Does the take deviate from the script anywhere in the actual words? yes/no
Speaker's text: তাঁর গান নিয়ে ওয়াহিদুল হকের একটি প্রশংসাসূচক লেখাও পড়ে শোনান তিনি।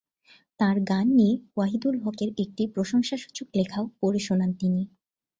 no